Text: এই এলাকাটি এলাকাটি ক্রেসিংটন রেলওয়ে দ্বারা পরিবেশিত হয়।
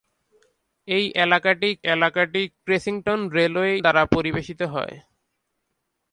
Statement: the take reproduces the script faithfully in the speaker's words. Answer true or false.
true